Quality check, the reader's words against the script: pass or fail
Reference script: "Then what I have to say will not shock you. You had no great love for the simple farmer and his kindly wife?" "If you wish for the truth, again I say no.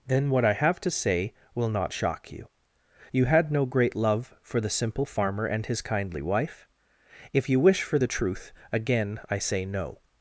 pass